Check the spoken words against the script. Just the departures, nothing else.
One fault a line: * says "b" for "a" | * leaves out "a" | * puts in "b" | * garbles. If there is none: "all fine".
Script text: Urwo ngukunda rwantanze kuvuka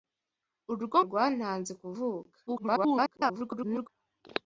* leaves out "ngukunda"
* garbles